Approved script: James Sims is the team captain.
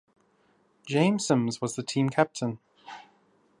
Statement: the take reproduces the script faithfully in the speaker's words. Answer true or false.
false